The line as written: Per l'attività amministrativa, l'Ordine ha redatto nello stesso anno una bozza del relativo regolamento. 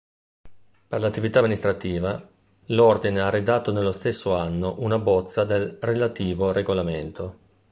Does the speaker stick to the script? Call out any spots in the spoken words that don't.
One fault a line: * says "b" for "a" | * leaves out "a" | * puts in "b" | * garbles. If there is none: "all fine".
all fine